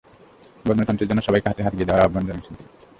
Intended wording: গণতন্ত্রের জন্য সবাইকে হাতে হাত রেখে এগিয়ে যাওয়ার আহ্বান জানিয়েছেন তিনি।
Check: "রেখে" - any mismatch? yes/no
yes